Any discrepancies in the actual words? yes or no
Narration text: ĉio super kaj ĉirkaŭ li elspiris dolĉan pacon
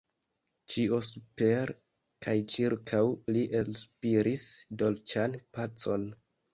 no